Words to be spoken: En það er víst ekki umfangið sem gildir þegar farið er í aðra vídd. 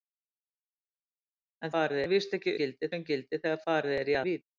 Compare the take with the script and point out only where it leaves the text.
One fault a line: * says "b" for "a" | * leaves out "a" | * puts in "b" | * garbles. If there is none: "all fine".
* says "farið" for "það"
* says "gildir" for "umfangið"
* leaves out "aðra"